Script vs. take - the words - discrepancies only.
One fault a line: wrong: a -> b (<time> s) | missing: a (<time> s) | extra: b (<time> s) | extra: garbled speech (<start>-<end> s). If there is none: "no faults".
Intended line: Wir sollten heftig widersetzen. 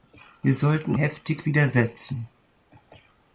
no faults